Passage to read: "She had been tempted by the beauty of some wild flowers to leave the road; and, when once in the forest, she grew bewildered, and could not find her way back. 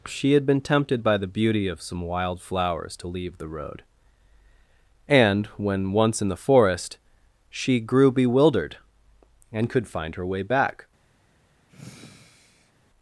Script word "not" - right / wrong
wrong